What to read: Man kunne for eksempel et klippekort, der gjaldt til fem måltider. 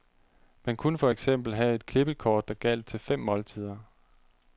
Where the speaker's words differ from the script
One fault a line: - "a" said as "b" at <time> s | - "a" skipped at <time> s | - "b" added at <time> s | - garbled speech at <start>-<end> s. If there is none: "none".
- "have" added at 1.5 s